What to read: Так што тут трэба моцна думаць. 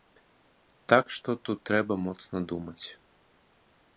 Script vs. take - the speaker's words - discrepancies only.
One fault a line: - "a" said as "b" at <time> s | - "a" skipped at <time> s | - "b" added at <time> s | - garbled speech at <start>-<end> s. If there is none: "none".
none